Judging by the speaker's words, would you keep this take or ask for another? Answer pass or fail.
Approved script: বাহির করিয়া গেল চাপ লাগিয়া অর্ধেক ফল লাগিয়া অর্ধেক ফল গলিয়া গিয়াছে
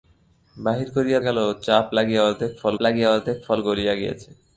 pass